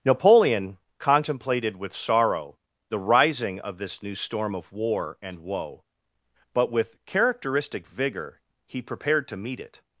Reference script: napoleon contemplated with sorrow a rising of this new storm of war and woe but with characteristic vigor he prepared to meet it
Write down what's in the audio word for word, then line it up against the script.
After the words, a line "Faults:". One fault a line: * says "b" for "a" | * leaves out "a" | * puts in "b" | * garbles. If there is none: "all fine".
napoleon contemplated with sorrow the rising of this new storm of war and woe but with characteristic vigor he prepared to meet it
Faults:
* says "the" for "a"